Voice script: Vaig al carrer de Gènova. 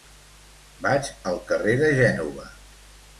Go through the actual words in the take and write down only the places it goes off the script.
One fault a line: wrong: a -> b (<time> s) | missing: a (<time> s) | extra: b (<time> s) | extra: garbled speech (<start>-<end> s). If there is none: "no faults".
no faults